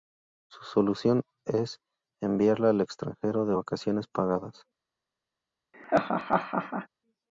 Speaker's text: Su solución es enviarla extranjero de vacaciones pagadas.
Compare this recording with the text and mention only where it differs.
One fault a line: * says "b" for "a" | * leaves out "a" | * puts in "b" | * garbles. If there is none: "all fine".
* puts in "al"